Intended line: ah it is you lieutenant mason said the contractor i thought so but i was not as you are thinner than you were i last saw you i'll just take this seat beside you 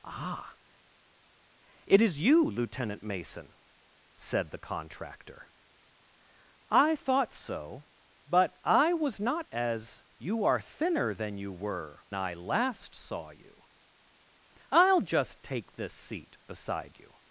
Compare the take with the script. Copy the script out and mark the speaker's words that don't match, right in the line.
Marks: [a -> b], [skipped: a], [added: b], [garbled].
ah it is you lieutenant mason said the contractor i thought so but i was not as you are thinner than you were i last saw you i'll just take this seat beside you